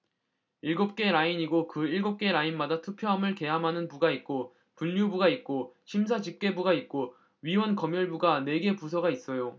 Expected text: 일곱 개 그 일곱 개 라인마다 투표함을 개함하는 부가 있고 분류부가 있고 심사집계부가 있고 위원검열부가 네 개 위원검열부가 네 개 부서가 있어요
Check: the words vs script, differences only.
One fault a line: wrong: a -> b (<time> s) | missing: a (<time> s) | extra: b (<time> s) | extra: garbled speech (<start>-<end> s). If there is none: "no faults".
extra: 라인이고 (1.1 s)
missing: 위원검열부가 네 개 (8.8 s)